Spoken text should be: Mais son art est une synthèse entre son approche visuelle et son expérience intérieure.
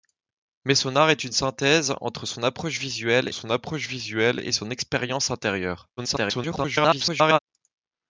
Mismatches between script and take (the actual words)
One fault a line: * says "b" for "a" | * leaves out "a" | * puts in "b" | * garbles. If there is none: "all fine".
* puts in "son approche visuelle"
* garbles